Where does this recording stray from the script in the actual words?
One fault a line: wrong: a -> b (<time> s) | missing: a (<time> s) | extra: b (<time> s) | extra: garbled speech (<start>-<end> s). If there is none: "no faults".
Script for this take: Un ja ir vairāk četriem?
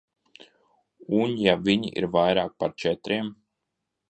extra: viņi (1.7 s)
extra: par (2.6 s)